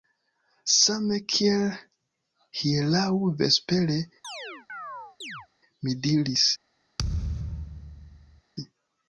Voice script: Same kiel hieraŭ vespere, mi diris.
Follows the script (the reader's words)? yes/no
yes